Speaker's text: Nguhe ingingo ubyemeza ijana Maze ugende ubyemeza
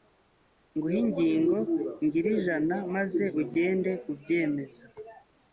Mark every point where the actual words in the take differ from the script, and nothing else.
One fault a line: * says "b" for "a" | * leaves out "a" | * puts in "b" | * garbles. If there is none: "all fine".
* says "ngire" for "ubyemeza"